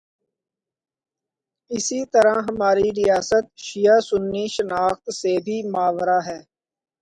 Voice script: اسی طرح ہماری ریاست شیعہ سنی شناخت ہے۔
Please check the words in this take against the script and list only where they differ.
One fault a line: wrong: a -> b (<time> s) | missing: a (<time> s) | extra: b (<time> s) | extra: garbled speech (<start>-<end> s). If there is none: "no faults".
extra: سے بھی ماورا (5.1 s)